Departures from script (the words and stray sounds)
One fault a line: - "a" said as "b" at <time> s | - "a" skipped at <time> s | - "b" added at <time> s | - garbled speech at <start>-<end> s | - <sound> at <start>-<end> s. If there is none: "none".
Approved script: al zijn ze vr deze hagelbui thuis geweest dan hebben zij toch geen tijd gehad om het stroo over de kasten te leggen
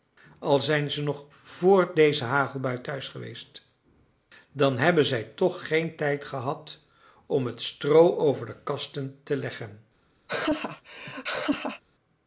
- "nog" added at 1.0 s
- laugh at 10.3-11.8 s